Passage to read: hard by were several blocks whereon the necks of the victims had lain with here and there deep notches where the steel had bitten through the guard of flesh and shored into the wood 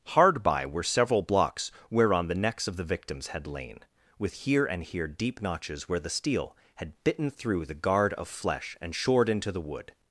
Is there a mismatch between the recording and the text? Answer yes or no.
yes